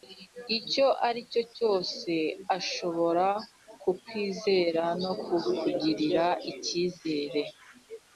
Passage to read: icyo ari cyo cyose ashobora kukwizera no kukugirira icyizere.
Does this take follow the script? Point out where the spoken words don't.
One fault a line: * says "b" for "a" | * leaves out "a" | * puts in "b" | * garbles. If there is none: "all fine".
all fine